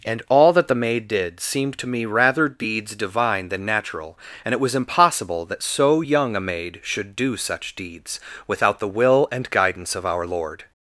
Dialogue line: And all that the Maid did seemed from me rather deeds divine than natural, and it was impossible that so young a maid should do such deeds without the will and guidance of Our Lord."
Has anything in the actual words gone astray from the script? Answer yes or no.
yes